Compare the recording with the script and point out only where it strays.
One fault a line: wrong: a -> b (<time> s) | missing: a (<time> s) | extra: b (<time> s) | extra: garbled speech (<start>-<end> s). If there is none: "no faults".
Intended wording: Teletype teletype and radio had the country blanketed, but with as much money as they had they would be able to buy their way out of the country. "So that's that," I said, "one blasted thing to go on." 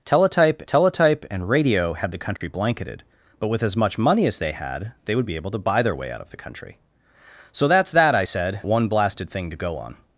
no faults